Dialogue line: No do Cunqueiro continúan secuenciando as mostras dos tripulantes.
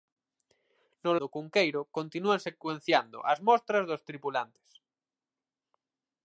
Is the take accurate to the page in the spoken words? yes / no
yes